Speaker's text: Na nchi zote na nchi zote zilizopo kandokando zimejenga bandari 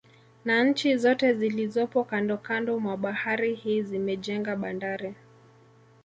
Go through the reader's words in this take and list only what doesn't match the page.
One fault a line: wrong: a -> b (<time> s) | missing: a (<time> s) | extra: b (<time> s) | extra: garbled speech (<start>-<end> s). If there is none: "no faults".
wrong: na nchi zote zilizopo kandokando -> zilizopo kandokando mwa bahari hii (1.3 s)